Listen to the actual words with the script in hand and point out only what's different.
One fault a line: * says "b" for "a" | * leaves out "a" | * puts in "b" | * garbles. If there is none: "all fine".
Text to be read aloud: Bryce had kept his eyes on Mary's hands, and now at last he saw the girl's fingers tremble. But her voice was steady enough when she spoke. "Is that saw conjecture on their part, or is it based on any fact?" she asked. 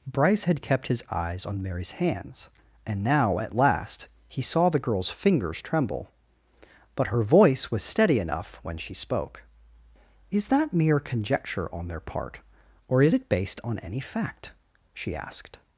* says "mere" for "saw"